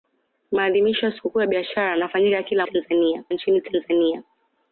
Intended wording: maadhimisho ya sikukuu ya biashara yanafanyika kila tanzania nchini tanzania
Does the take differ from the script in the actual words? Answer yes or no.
no